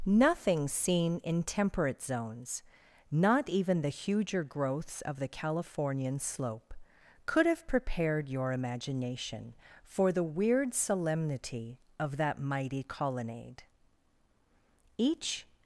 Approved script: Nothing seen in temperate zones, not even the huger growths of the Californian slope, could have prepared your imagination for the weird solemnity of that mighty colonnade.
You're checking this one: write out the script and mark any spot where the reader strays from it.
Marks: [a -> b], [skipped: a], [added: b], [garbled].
Nothing seen in temperate zones, not even the huger growths of the Californian slope, could have prepared your imagination for the weird solemnity of that mighty colonnade. [added: Each]